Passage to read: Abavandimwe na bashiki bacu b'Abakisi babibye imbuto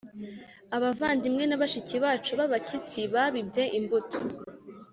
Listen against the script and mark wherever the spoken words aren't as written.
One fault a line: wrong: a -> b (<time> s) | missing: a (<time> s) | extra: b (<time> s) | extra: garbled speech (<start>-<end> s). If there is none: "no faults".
no faults